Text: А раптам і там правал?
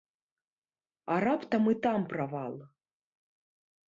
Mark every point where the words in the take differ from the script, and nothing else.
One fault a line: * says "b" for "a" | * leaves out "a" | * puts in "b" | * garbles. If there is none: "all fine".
all fine